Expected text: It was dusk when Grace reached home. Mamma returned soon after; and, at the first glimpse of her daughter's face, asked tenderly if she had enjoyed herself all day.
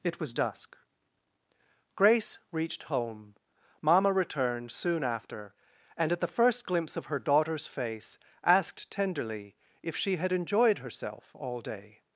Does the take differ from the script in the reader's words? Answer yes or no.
yes